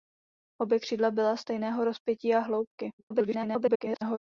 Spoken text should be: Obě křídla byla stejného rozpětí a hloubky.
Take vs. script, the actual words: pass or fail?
fail